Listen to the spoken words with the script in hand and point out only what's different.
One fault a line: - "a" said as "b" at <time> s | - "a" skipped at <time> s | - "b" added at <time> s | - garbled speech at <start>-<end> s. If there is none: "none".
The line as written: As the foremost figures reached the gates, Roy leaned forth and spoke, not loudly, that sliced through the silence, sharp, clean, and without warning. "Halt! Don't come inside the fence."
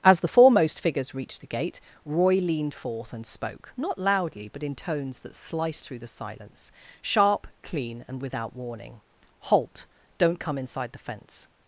- "gates" said as "gate" at 1.5 s
- "but in tones" added at 4.5 s